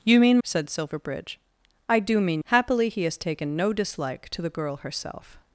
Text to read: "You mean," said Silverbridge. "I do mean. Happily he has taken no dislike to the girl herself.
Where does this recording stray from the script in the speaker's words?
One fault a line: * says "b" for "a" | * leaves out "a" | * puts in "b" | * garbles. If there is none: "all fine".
all fine